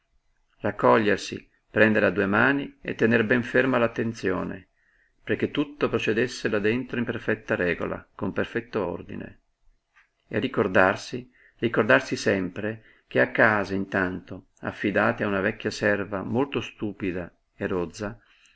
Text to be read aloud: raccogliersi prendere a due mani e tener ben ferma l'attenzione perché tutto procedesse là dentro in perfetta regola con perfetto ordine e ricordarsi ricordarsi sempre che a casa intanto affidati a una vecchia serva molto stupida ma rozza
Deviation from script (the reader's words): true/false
true